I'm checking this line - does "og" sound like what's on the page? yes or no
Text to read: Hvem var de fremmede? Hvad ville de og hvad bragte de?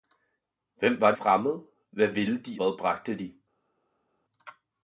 no